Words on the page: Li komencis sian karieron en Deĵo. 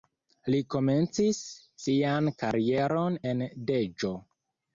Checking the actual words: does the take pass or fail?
pass